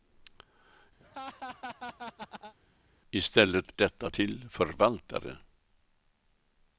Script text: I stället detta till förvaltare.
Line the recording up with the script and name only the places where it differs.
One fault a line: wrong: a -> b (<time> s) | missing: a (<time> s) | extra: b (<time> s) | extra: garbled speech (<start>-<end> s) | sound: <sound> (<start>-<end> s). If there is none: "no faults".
sound: laugh (1.0-2.5 s)